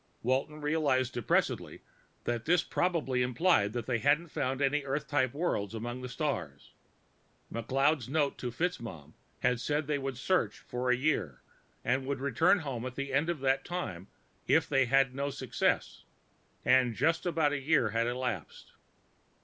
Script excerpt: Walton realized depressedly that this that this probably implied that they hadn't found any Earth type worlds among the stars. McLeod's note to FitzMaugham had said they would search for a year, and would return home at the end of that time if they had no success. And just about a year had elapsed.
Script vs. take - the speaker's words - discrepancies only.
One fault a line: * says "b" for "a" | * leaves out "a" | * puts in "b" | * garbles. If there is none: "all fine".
* leaves out "that this"